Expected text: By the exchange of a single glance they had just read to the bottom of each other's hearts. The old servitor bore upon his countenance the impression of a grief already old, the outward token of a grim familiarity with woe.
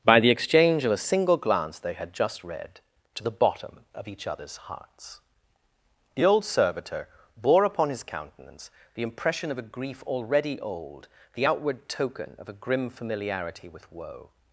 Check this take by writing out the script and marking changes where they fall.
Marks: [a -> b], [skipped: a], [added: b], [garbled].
By the exchange of a single glance they had just read to the bottom of each other's hearts. The old servitor bore upon his countenance the impression of a grief already old, the outward token of a grim familiarity with woe.